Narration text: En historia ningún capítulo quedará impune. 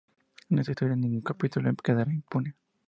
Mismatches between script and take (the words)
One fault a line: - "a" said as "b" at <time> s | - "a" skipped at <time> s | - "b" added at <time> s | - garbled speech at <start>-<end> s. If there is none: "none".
- "esta" added at 0.6 s